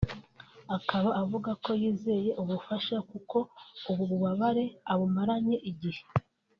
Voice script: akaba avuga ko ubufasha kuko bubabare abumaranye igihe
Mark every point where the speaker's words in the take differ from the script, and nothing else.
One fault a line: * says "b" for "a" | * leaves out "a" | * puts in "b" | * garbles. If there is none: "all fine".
* puts in "yizeye"
* puts in "ubu"